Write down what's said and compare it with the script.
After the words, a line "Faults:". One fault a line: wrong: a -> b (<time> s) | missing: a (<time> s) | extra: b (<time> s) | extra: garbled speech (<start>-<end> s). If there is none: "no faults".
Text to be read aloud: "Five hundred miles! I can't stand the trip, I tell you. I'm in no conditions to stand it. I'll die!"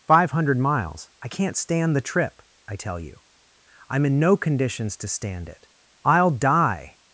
"Five hundred miles! I can't stand the trip, I tell you. I'm in no conditions to stand it. I'll die!"
Faults:
no faults